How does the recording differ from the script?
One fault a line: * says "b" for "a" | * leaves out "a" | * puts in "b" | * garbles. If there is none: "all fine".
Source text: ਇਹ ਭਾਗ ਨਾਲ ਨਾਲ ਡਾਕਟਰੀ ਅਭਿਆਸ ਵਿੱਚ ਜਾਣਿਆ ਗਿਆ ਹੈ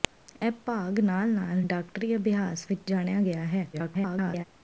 * garbles